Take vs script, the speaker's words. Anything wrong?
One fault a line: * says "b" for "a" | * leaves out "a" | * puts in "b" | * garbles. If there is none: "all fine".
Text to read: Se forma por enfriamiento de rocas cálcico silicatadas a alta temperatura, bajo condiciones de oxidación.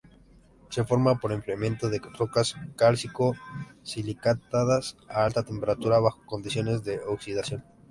all fine